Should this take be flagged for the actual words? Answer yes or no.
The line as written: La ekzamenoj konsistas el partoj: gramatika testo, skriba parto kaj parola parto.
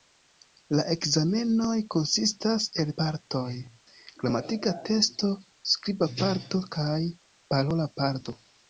no